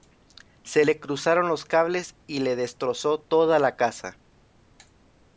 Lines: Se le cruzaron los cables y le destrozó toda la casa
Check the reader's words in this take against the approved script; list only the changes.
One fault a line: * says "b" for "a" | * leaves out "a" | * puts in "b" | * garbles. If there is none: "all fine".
all fine